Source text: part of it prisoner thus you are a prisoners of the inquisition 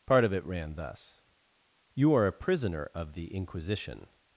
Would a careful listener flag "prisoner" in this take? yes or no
yes